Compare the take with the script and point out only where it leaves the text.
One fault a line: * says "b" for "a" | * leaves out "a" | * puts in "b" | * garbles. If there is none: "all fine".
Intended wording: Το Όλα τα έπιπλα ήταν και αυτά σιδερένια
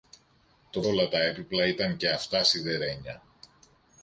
all fine